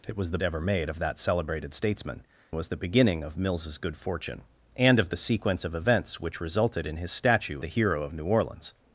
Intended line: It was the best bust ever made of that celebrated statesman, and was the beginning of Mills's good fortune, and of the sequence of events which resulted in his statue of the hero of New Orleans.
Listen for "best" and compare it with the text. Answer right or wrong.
wrong